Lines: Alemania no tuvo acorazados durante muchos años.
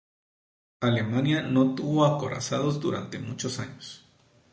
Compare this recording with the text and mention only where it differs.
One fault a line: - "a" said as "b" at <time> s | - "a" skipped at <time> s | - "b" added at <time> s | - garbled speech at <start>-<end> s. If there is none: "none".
none